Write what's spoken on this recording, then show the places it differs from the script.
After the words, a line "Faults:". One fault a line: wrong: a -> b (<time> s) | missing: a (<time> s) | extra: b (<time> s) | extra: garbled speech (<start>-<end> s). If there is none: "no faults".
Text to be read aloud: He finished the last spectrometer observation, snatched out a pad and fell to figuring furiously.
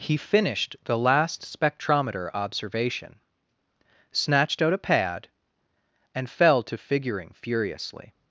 He finished the last spectrometer observation, snatched out a pad and fell to figuring furiously.
Faults:
no faults